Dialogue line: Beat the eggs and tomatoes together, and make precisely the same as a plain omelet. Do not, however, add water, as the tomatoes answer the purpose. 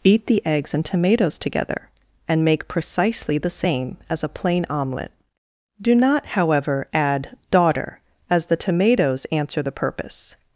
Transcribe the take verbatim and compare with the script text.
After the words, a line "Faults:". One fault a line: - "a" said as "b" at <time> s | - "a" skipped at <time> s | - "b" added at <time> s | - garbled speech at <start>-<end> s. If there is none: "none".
Beat the eggs and tomatoes together, and make precisely the same as a plain omelet. Do not, however, add daughter, as the tomatoes answer the purpose.
Faults:
- "water" said as "daughter" at 7.5 s